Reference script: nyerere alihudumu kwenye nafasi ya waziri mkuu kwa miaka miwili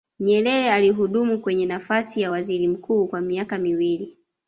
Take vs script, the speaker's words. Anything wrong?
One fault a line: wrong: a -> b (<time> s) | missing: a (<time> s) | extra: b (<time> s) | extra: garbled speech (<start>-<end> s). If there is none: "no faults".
no faults